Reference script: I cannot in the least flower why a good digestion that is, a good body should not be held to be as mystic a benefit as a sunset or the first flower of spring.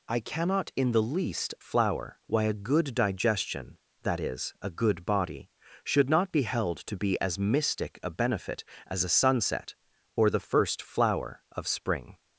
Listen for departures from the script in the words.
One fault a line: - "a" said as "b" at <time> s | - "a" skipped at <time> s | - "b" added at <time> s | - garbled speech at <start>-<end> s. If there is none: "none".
none